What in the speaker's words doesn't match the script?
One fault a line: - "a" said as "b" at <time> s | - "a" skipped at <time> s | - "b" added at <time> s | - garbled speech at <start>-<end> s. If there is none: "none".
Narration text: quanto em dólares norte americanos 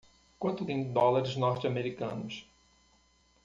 none